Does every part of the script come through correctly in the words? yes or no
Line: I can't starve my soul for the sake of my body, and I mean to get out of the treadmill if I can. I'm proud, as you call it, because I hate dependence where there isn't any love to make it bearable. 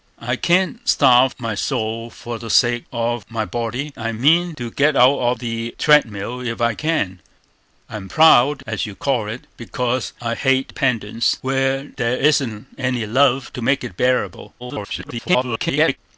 no